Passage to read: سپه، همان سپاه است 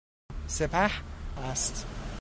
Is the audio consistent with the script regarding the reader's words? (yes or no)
no